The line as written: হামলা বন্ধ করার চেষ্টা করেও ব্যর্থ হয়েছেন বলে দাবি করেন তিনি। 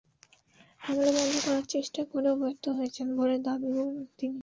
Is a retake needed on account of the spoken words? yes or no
no